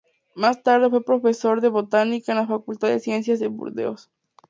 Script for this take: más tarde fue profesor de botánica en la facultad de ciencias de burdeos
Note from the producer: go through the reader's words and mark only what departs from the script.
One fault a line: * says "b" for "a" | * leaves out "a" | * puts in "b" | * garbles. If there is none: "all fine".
all fine